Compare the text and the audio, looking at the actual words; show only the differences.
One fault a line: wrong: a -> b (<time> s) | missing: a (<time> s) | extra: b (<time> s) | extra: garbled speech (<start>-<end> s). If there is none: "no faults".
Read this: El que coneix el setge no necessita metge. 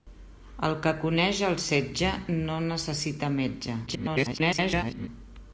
extra: garbled speech (3.9-5.1 s)